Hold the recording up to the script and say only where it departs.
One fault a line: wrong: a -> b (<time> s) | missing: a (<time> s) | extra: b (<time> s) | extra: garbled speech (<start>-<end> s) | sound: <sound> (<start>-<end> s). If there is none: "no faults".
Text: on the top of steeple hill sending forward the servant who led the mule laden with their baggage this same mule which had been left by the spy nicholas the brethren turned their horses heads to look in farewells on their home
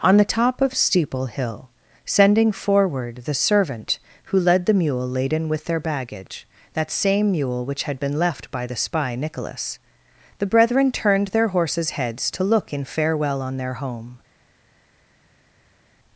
wrong: this -> that (6.7 s)
wrong: farewells -> farewell (12.8 s)